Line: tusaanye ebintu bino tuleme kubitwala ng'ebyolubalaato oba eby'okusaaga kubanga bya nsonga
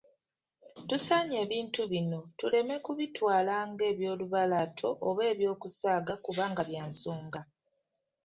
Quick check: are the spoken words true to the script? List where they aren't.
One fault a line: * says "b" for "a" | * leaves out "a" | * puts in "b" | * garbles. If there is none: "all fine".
all fine